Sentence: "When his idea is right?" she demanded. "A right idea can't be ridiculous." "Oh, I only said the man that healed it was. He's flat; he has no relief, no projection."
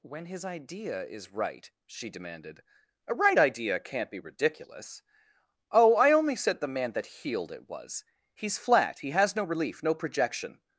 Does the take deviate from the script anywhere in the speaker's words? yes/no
no